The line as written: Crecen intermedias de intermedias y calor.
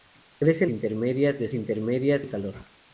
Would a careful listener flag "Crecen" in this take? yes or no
no